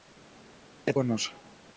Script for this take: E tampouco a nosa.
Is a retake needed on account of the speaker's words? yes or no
yes